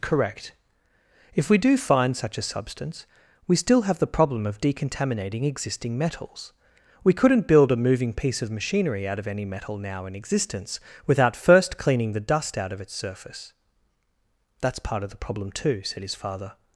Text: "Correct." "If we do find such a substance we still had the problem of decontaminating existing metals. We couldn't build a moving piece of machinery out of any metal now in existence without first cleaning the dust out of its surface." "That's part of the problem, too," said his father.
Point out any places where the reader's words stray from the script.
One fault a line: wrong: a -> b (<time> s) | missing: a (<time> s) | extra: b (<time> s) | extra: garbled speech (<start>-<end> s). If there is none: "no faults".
wrong: had -> have (3.8 s)